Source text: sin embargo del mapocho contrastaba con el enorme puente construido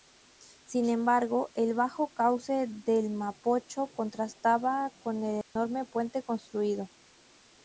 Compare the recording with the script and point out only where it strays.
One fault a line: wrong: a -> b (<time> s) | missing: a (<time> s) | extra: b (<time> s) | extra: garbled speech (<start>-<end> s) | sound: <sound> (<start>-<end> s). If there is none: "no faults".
extra: el bajo cauce (1.5 s)
sound: dropout (5.4-5.6 s)